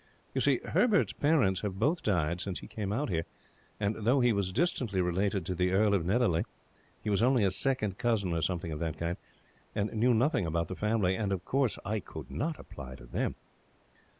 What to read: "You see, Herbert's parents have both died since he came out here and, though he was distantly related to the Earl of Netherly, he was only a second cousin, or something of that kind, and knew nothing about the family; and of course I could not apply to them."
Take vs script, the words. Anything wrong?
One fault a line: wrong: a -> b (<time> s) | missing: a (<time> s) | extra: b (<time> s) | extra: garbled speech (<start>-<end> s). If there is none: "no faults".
no faults